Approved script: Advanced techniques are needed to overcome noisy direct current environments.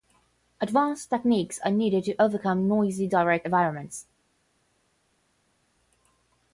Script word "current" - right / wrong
wrong